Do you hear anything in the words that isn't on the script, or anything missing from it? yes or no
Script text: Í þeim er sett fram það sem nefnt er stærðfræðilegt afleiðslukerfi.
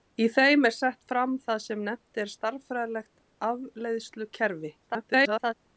yes